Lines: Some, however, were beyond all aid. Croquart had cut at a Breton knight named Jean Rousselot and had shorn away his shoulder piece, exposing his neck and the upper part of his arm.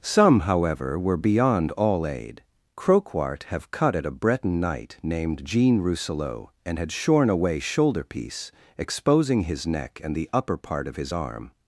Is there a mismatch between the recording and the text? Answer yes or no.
yes